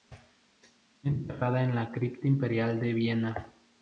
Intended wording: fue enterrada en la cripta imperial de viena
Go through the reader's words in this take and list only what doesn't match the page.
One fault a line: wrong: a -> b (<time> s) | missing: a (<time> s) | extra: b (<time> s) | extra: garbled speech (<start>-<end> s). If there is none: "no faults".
no faults